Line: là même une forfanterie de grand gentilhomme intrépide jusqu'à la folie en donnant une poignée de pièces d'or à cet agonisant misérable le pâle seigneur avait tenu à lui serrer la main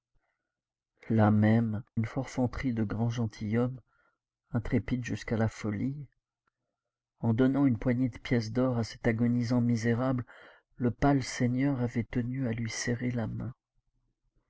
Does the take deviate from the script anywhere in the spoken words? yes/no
no